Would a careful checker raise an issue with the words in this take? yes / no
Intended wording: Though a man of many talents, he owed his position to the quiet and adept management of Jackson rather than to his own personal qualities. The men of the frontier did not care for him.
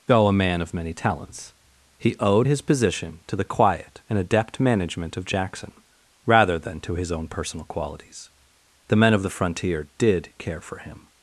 yes